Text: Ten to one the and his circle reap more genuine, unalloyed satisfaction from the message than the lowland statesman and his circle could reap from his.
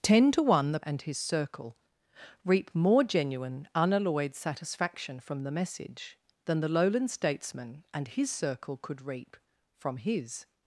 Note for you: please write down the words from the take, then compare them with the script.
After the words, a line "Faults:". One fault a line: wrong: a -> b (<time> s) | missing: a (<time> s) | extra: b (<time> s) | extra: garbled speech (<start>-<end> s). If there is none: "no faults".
Ten to one the and his circle reap more genuine, unalloyed satisfaction from the message than the lowland statesman and his circle could reap from his.
Faults:
no faults